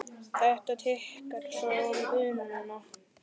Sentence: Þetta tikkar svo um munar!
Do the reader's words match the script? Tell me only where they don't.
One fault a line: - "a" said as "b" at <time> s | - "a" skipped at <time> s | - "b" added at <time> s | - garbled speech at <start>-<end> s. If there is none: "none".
none